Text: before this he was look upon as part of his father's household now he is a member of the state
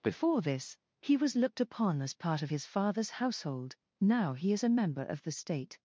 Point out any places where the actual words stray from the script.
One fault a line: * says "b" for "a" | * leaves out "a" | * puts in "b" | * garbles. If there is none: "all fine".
* says "looked" for "look"